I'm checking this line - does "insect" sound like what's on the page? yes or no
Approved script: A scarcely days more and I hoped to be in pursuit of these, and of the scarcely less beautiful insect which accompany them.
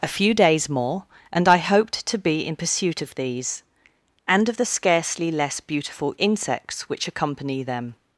no